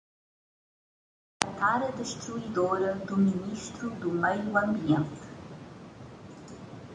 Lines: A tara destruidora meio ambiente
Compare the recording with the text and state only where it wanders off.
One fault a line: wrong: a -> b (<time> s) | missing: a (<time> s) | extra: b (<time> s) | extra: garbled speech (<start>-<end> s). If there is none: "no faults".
extra: do ministro do (3.0 s)